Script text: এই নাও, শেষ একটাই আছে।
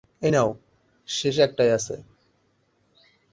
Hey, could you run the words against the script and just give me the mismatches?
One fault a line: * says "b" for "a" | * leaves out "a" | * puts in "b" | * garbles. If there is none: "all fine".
all fine